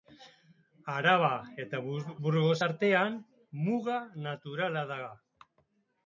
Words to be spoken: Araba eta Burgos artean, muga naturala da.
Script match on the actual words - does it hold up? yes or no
yes